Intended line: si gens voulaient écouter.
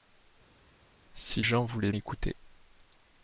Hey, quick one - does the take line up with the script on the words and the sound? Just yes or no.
yes